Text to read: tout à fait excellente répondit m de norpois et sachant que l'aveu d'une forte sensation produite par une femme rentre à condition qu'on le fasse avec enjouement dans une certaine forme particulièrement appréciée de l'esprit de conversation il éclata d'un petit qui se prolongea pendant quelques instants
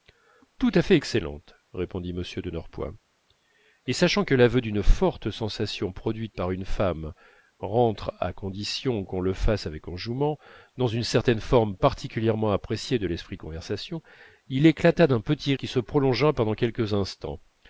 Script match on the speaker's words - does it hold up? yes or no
yes